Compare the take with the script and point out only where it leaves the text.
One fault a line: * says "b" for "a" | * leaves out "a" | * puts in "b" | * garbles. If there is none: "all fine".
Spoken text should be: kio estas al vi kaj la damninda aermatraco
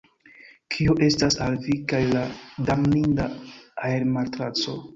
all fine